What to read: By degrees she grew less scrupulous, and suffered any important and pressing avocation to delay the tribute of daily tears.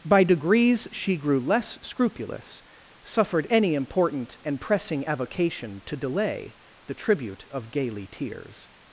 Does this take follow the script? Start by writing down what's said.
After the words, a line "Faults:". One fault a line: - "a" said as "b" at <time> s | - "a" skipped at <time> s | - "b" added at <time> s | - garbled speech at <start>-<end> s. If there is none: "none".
By degrees she grew less scrupulous, suffered any important and pressing avocation to delay the tribute of gaily tears.
Faults:
- "and" skipped at 2.6 s
- "daily" said as "gaily" at 7.7 s